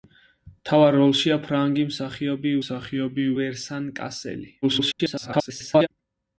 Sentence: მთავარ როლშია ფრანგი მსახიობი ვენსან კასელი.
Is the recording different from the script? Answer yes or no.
yes